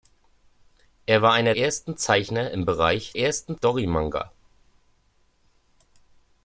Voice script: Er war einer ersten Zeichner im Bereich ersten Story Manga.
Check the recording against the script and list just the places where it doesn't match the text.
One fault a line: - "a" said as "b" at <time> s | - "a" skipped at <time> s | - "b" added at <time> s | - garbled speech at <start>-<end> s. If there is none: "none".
none